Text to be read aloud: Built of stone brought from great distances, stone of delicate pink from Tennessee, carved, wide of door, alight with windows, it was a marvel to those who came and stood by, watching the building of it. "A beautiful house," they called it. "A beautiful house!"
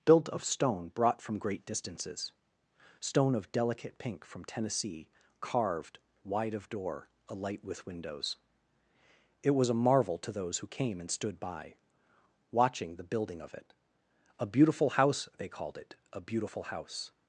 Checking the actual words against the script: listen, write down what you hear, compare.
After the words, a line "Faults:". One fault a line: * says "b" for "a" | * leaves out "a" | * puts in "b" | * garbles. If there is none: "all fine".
Built of stone brought from great distances, stone of delicate pink from Tennessee, carved, wide of door, alight with windows, it was a marvel to those who came and stood by, watching the building of it. "A beautiful house," they called it. "A beautiful house!"
Faults:
all fine